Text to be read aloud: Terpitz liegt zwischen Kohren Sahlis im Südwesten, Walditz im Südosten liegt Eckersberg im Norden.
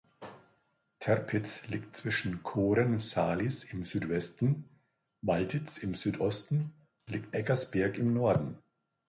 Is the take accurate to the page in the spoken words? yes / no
yes